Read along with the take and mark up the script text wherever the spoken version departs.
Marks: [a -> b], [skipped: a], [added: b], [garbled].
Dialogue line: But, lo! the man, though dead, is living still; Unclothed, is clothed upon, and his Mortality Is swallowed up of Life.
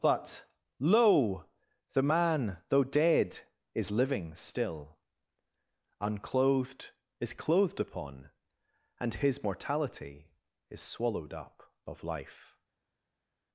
But, lo! the man, though dead, is living still; Unclothed, is clothed upon, and his Mortality Is swallowed up of Life.